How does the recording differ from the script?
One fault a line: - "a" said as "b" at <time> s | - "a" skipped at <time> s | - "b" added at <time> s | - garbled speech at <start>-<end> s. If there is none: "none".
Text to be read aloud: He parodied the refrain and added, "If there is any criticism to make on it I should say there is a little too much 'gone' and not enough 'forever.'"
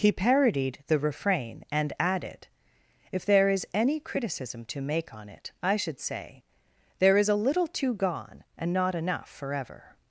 - "much" skipped at 7.9 s